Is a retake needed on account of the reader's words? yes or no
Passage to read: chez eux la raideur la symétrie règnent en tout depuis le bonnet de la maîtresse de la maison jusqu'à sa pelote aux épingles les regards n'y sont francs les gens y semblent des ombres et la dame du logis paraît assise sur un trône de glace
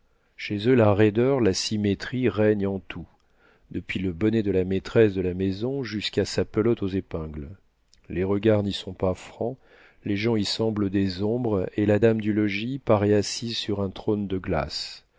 yes